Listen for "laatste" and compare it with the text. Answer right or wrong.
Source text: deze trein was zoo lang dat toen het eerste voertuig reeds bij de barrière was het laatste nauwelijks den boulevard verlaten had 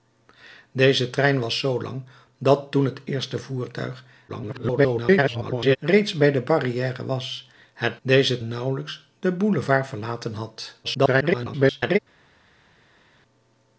wrong